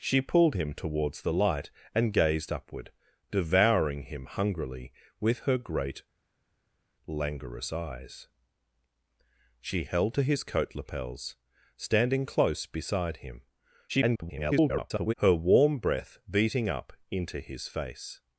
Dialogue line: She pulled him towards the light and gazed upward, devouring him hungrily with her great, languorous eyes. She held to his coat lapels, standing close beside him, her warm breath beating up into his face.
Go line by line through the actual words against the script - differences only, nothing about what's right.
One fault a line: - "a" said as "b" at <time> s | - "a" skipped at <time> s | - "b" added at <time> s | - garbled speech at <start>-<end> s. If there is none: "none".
- garbled speech at 13.9-15.1 s